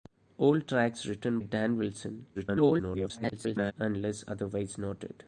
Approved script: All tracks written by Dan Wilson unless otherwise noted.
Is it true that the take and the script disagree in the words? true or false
true